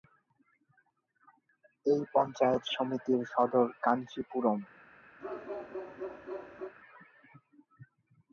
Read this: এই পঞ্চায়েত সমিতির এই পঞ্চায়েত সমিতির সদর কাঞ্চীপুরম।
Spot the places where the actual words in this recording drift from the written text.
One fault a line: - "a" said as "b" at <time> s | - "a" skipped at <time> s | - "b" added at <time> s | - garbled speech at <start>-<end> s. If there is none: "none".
- "এই পঞ্চায়েত সমিতির" skipped at 3.2 s